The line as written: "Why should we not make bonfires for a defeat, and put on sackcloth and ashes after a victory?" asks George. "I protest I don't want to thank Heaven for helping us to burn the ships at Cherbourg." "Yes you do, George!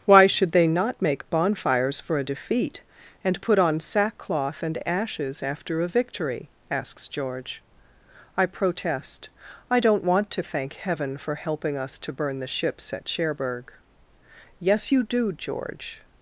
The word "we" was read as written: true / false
false